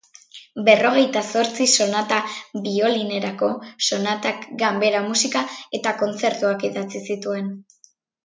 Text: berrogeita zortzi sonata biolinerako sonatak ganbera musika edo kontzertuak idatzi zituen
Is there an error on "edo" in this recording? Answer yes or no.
yes